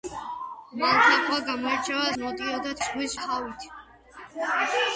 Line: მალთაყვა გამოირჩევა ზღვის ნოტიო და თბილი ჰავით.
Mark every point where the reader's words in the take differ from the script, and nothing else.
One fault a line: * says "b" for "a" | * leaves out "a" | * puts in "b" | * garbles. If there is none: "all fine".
* leaves out "ზღვის"
* says "ზღვის" for "თბილი"